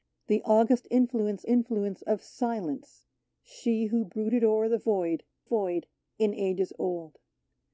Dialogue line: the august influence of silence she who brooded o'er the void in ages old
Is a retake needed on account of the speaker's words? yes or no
yes